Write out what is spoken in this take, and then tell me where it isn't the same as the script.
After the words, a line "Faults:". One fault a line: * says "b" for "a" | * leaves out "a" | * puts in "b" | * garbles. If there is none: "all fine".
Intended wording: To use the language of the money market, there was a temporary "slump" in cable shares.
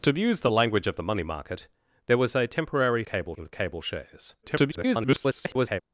To use the language of the money market, there was a temporary "cable" in cable shares. [garbled]
Faults:
* says "cable" for "slump"
* garbles